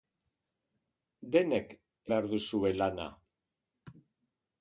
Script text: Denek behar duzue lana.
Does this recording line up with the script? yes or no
yes